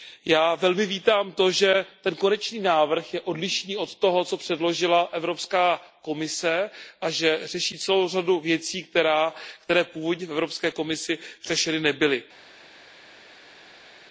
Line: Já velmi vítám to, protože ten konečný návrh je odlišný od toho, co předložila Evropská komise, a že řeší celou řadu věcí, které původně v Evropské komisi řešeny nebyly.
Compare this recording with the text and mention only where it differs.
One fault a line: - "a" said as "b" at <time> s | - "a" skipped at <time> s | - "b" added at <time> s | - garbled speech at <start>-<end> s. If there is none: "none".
- "protože" said as "že" at 1.5 s